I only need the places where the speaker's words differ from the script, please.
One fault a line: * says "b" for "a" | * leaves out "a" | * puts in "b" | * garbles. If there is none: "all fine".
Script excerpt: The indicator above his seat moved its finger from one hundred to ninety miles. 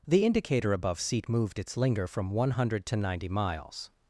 * leaves out "his"
* says "linger" for "finger"